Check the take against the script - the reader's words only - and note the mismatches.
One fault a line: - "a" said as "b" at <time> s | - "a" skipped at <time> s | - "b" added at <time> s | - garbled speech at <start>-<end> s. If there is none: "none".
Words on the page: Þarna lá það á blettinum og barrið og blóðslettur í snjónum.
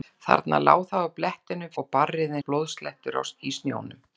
none